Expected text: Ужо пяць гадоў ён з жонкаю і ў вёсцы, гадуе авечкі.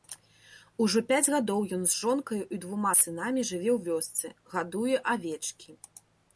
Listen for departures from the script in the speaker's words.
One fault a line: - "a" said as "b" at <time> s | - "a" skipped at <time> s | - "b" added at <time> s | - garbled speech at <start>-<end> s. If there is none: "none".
- "двума сынамі жыве" added at 2.6 s